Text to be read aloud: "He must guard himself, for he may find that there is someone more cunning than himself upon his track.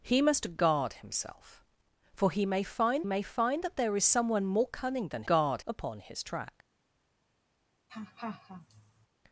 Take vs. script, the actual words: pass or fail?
fail